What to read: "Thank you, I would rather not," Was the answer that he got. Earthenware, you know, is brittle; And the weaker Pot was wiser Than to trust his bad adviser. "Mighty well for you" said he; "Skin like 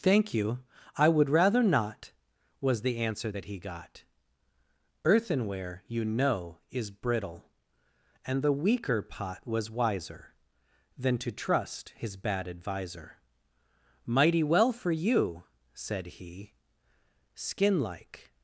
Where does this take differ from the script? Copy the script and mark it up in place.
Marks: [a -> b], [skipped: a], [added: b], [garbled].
"Thank you, I would rather not," Was the answer that he got. Earthenware, you know, is brittle; And the weaker Pot was wiser Than to trust his bad adviser. "Mighty well for you" said he; "Skin like